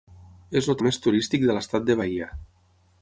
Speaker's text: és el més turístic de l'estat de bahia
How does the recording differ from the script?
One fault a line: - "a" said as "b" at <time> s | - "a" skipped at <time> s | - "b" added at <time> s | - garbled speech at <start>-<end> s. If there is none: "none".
none